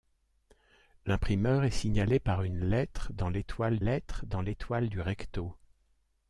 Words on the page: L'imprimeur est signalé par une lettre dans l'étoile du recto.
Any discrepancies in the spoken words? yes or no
yes